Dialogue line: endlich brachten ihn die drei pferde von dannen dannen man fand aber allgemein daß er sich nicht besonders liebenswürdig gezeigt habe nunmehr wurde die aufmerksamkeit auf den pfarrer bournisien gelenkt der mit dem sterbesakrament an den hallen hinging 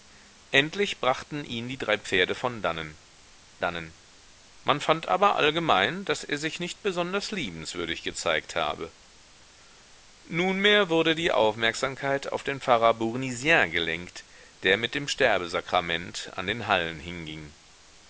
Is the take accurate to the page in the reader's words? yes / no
yes